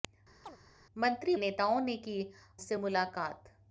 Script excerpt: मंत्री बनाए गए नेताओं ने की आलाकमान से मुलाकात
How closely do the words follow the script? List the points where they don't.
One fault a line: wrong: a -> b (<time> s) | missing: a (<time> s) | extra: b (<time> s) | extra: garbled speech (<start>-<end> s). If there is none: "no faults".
missing: बनाए गए (1.3 s)
missing: आलाकमान (2.2 s)